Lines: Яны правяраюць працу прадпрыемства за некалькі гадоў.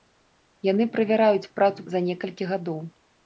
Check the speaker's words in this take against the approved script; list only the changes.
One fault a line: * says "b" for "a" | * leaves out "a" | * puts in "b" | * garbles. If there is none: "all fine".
* leaves out "прадпрыемства"